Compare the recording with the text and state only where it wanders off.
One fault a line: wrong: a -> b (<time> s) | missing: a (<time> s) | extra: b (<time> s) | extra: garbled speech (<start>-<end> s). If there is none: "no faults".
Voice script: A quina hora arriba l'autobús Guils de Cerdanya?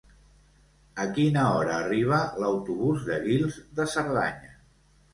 extra: de (3.1 s)